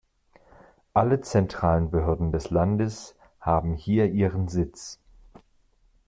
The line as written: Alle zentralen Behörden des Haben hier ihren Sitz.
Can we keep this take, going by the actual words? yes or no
no